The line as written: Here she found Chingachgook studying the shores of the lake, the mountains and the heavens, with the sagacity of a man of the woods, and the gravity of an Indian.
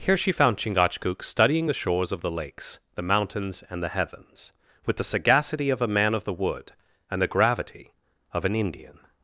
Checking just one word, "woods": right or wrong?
wrong